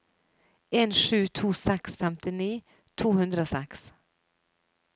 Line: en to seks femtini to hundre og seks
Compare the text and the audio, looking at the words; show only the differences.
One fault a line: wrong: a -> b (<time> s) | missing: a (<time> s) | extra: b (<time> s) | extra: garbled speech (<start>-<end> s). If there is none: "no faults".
extra: sju (1.0 s)